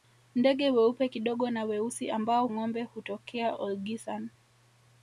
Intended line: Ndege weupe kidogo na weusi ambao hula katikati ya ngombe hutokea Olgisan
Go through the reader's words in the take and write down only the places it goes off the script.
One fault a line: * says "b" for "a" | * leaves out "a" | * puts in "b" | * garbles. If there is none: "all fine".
* leaves out "hula katikati ya"